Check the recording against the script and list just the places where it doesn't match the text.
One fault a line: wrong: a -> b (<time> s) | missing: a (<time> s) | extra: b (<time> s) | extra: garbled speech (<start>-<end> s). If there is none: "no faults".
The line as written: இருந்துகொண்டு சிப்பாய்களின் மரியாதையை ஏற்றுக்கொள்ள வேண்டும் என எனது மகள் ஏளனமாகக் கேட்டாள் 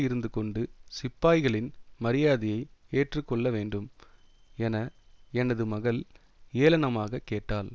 no faults